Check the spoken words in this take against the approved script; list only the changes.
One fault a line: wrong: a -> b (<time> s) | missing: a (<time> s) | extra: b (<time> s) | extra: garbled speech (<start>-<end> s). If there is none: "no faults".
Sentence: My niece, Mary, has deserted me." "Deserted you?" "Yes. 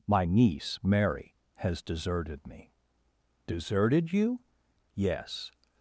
no faults